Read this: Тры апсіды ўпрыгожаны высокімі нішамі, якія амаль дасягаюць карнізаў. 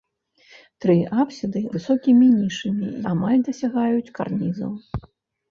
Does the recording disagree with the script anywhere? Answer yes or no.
yes